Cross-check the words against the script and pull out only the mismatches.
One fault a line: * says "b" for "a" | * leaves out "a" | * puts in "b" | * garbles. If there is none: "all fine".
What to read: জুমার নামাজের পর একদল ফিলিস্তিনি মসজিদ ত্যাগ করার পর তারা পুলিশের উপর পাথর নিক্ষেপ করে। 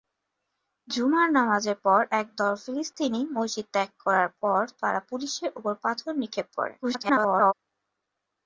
* garbles